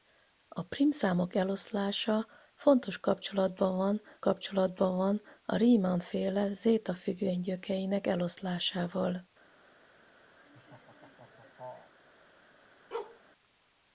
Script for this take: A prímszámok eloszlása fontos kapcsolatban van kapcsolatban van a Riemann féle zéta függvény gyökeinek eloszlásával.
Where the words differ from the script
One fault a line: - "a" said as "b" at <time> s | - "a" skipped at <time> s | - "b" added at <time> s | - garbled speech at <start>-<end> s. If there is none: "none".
none